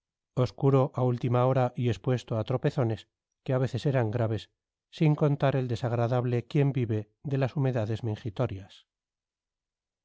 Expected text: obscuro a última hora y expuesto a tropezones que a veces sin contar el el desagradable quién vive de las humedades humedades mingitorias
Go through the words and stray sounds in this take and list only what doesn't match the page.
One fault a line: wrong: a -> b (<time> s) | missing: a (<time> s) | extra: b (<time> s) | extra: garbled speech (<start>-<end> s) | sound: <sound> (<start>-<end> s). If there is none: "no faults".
extra: eran graves (3.9 s)
missing: el (5.7 s)
missing: humedades (8.0 s)